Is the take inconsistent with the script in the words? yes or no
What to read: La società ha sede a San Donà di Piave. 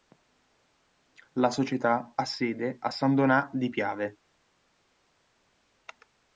no